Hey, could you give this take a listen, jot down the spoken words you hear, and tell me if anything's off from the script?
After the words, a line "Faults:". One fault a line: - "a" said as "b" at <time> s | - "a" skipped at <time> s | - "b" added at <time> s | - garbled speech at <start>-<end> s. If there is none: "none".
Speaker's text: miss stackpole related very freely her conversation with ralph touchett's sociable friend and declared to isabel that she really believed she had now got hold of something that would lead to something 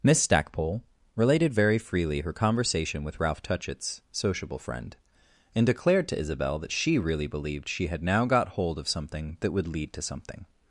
miss stackpole related very freely her conversation with ralph touchett's sociable friend and declared to isabel that she really believed she had now got hold of something that would lead to something
Faults:
none